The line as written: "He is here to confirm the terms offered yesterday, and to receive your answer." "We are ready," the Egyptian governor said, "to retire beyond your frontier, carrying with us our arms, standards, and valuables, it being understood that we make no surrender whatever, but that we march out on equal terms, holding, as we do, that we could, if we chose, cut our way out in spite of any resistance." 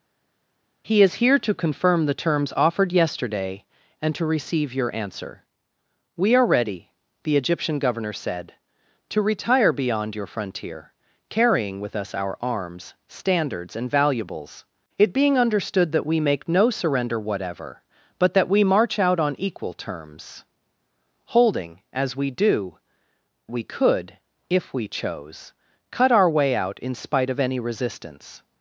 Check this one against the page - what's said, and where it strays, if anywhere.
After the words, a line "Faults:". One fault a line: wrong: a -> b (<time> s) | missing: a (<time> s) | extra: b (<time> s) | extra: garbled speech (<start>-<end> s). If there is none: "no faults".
"He is here to confirm the terms offered yesterday, and to receive your answer." "We are ready," the Egyptian governor said, "to retire beyond your frontier, carrying with us our arms, standards, and valuables, it being understood that we make no surrender whatever, but that we march out on equal terms, holding, as we do, we could, if we chose, cut our way out in spite of any resistance."
Faults:
missing: that (22.8 s)